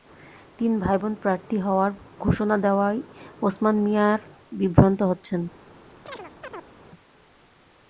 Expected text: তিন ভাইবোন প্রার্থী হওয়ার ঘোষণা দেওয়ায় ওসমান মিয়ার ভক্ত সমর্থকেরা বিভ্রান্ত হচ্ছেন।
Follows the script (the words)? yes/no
no